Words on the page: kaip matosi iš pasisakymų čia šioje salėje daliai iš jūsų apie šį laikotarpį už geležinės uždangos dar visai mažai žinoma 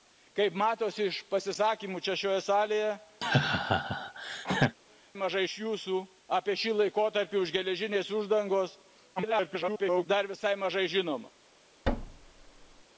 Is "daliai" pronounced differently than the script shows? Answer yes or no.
yes